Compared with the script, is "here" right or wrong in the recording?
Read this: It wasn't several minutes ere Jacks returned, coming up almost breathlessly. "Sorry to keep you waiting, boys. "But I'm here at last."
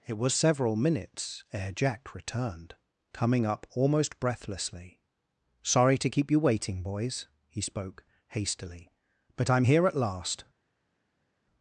right